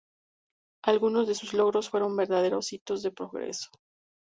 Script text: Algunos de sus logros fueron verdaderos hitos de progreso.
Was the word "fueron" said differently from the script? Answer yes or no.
no